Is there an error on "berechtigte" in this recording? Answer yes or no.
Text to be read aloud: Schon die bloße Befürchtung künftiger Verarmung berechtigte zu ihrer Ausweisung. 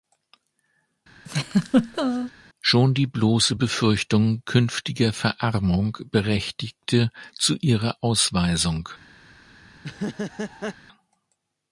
no